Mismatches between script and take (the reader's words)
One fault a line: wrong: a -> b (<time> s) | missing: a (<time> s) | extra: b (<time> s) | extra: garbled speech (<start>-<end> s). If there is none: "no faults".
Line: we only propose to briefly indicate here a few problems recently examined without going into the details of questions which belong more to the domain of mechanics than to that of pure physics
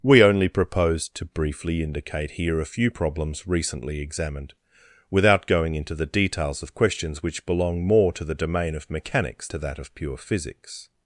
missing: than (9.5 s)